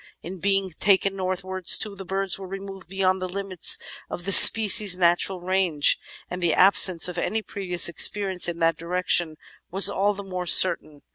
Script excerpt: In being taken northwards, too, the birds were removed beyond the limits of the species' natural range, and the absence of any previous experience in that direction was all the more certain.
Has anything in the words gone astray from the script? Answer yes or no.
no